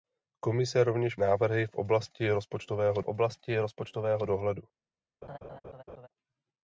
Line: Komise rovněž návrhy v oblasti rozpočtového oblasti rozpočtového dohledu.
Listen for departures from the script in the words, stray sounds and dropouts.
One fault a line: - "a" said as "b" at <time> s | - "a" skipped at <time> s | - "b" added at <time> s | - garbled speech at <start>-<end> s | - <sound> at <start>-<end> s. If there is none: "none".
- laugh at 5.2-6.1 s